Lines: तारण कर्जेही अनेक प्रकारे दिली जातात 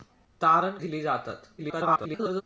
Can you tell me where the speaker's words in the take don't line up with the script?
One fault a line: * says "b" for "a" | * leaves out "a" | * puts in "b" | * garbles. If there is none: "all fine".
* leaves out "कर्जेही अनेक प्रकारे"
* garbles